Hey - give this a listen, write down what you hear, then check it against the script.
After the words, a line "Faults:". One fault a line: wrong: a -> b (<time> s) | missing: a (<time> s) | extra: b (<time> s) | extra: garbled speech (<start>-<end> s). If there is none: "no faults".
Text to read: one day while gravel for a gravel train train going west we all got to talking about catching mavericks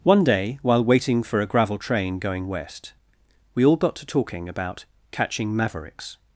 one day while waiting for a gravel train going west we all got to talking about catching mavericks
Faults:
wrong: gravel -> waiting (0.8 s)
missing: train (2.2 s)